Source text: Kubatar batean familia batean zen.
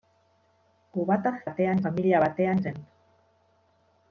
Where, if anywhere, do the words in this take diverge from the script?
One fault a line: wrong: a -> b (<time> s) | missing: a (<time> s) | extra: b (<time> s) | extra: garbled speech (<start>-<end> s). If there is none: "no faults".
no faults